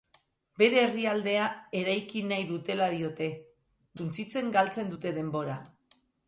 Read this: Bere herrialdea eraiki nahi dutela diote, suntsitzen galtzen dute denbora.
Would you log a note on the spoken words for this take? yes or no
no